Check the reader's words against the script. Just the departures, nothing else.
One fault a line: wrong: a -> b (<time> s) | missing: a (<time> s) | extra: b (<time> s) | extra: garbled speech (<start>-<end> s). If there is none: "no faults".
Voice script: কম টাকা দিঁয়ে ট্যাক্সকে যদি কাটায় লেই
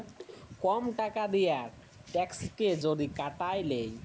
no faults